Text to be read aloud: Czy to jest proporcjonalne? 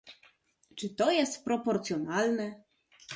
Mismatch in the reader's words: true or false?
false